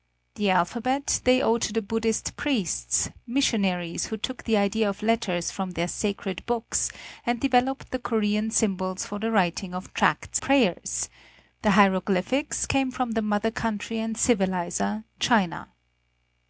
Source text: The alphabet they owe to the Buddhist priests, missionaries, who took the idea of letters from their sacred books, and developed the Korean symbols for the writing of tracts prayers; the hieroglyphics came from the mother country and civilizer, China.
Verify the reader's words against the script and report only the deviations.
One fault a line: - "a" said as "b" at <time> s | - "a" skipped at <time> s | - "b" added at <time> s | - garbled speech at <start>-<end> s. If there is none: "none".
none